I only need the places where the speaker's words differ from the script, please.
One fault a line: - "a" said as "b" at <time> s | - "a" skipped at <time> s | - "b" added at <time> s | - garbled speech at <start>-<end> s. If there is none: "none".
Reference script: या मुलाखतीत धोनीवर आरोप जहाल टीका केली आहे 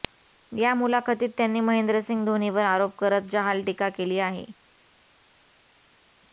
- "त्यांनी महेंद्रसिंग" added at 1.4 s
- "करत" added at 3.0 s